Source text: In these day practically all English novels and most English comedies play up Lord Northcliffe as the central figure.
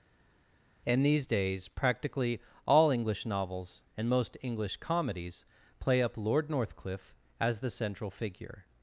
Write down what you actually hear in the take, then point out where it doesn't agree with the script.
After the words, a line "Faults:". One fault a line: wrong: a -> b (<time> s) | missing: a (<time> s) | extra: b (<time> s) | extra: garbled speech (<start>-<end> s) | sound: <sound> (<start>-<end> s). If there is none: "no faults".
In these days practically all English novels and most English comedies play up Lord Northcliffe as the central figure.
Faults:
wrong: day -> days (1.3 s)